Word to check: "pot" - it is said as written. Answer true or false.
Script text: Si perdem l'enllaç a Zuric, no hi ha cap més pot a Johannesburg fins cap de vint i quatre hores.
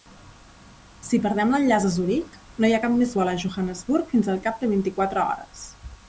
false